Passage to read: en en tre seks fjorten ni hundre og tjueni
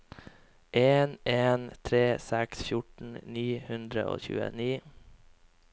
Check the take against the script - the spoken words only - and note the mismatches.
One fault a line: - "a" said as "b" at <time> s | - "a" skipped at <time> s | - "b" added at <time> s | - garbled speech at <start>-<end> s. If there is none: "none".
none